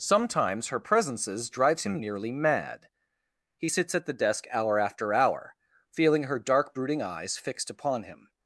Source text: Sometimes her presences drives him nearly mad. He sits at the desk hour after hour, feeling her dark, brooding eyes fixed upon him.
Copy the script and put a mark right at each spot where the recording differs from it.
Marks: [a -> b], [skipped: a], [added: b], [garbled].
Sometimes her presences drives him nearly mad. He sits at the desk hour after hour, feeling her dark, brooding eyes fixed upon him.